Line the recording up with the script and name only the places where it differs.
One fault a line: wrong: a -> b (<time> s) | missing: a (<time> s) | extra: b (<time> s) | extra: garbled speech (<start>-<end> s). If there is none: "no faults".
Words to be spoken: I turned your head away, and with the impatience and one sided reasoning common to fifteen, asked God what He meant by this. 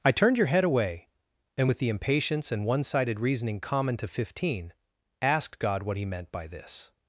no faults